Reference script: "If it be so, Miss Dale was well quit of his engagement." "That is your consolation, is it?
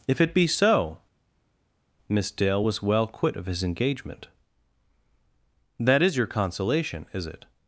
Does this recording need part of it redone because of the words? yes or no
no